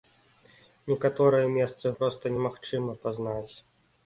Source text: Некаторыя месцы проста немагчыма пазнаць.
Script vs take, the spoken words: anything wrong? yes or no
no